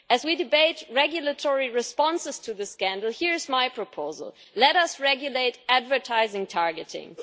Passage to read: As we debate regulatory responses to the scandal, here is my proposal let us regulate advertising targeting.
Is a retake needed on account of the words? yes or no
no